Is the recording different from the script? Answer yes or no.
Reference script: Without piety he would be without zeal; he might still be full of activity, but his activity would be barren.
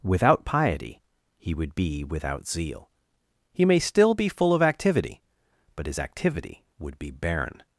yes